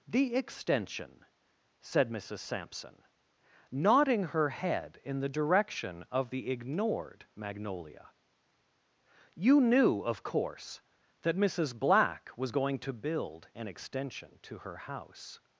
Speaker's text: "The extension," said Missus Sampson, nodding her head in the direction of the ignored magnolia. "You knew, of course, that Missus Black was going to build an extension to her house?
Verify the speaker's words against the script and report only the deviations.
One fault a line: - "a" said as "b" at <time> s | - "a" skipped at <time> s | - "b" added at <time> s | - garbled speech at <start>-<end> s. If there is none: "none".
none